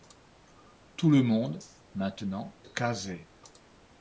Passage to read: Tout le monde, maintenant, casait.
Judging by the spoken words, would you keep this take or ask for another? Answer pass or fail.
pass